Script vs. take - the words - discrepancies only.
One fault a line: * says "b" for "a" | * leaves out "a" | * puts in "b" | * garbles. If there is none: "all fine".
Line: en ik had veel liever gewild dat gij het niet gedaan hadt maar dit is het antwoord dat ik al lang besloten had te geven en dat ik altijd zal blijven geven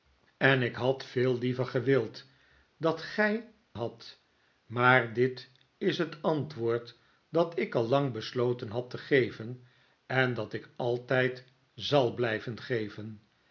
* leaves out "het niet gedaan"